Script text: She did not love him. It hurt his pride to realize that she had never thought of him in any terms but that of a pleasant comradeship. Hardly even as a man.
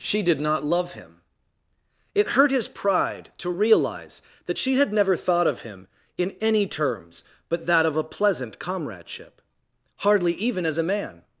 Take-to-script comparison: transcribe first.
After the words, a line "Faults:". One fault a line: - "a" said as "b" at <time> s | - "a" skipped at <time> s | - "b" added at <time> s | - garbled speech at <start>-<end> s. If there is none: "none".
She did not love him. It hurt his pride to realize that she had never thought of him in any terms but that of a pleasant comradeship. Hardly even as a man.
Faults:
none